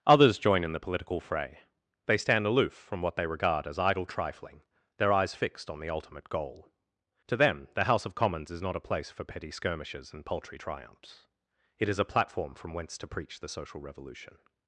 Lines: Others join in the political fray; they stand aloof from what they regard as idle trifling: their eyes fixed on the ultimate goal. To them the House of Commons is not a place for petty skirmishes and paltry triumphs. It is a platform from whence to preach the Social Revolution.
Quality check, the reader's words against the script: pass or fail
pass